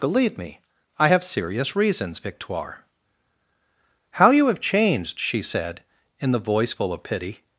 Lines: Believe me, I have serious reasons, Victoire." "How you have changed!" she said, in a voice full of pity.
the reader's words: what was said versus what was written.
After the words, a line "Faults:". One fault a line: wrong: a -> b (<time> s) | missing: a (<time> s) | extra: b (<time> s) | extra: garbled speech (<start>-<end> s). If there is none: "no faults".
Believe me, I have serious reasons, Victoire." "How you have changed!" she said, in the voice full of pity.
Faults:
wrong: a -> the (6.3 s)